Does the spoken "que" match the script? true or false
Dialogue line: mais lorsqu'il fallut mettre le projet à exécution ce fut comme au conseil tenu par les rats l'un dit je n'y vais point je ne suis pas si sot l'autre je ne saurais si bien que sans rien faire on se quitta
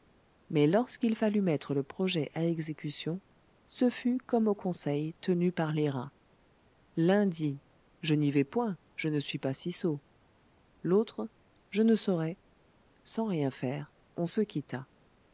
false